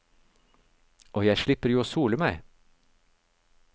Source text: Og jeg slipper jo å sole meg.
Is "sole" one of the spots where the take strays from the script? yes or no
no